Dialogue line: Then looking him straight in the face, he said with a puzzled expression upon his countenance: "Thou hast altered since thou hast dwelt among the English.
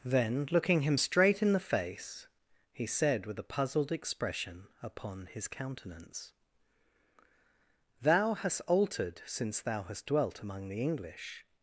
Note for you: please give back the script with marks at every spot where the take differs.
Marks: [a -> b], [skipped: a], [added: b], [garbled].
Then looking him straight in the face, he said with a puzzled expression upon his countenance: "Thou hast altered since thou hast dwelt among the English.